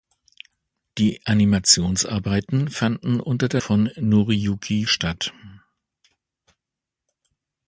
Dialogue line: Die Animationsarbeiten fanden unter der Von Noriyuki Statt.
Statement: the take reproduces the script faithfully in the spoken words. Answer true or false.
true